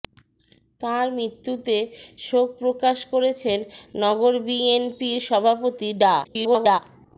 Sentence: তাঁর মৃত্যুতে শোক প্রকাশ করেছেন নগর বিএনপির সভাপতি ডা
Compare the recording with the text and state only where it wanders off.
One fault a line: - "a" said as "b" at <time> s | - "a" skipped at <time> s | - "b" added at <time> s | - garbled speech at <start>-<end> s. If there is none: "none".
- garbled speech at 6.2-6.8 s